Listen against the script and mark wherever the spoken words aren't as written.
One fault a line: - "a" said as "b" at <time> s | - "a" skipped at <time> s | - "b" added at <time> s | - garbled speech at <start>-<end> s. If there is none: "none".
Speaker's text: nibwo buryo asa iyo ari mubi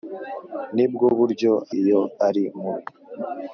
- "asa" skipped at 1.5 s